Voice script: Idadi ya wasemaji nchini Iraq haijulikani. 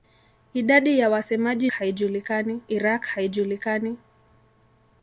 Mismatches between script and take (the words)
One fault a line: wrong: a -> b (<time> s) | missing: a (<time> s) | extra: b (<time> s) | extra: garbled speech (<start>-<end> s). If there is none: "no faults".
wrong: nchini -> haijulikani (1.7 s)